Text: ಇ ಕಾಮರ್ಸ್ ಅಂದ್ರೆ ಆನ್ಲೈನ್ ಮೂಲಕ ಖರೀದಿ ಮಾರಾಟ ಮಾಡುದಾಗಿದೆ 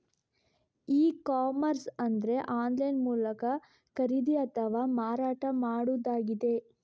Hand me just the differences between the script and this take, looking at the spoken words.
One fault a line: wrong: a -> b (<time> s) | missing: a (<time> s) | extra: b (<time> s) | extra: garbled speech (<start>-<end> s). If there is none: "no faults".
extra: ಅಥವಾ (4.5 s)